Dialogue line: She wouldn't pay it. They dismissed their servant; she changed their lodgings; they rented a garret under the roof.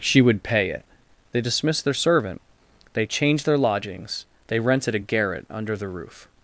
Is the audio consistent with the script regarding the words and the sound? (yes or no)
no